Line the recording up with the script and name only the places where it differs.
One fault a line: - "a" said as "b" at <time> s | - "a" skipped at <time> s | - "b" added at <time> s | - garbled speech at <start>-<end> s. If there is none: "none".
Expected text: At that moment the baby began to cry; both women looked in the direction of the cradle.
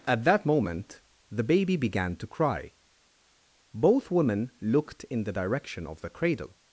none